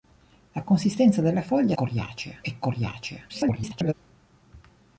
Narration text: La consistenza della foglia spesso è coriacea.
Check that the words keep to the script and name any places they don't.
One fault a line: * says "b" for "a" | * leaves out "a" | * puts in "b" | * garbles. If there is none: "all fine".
* says "coriacea" for "spesso"
* garbles